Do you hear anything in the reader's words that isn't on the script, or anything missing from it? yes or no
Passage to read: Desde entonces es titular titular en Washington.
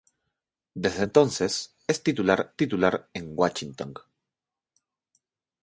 no